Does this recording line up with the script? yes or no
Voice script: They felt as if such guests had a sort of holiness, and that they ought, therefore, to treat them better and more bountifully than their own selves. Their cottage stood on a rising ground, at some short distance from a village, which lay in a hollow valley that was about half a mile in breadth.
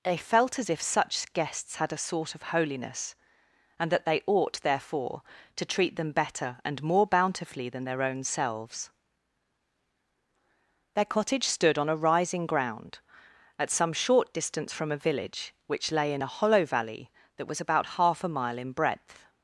yes